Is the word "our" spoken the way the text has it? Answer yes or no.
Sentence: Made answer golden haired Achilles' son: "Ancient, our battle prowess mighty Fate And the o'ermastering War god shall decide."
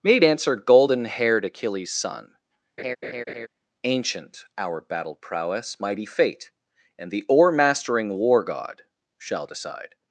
yes